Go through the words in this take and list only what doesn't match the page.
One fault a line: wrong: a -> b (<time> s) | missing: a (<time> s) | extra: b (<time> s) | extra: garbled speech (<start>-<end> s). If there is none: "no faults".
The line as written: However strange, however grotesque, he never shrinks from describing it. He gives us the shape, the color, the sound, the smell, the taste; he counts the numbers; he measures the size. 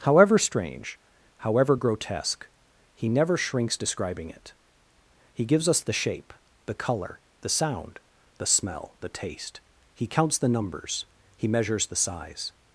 missing: from (3.8 s)